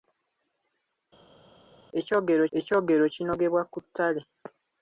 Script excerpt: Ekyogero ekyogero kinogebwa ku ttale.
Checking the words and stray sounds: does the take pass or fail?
pass